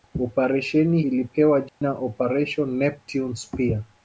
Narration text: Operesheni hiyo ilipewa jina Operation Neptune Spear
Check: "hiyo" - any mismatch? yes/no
yes